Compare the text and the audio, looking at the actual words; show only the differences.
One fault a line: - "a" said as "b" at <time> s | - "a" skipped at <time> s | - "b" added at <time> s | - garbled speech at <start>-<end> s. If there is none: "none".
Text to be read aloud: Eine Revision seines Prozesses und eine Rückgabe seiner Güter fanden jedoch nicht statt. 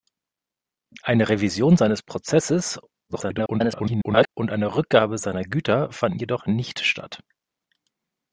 - garbled speech at 3.1-4.3 s